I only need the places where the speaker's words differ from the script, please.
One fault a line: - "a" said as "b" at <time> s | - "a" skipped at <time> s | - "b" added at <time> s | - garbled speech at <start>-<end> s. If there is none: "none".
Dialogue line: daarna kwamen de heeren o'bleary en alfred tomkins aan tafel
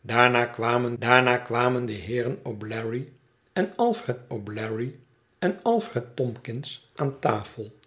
- "daarna kwamen" added at 0.9 s
- "o'bleary en alfred" added at 4.3 s